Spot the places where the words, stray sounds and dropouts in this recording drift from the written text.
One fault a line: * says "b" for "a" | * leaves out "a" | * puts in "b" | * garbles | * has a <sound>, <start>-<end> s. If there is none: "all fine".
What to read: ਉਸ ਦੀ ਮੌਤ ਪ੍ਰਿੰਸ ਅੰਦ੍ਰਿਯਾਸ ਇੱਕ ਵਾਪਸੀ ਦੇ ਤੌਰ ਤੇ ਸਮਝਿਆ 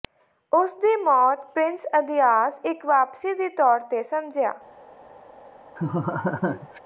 * has a laugh, 5.8-6.8 s